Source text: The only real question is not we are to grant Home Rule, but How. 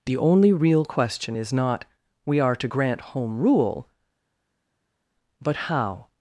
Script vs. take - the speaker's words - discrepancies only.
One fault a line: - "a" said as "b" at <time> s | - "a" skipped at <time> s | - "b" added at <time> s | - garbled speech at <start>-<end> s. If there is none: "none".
none